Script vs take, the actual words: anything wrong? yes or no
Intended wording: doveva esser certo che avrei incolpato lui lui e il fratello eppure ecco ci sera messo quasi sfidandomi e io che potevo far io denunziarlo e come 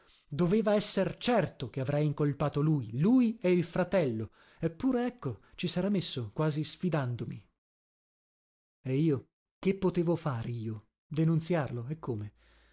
no